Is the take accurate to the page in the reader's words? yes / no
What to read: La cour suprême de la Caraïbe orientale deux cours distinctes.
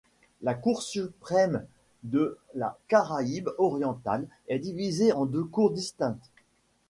no